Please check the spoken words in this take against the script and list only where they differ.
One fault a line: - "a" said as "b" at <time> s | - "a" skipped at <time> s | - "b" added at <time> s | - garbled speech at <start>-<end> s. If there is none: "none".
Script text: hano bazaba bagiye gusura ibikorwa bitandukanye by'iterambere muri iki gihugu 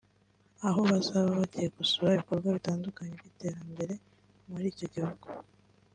- "hano" said as "aho" at 0.7 s
- "iki" said as "icyo" at 4.7 s